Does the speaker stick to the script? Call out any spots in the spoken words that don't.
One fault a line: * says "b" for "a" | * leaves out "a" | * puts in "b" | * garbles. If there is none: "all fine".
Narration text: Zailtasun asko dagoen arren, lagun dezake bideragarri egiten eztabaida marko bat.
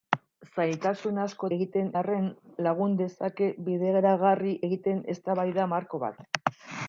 * says "egiten" for "dagoen"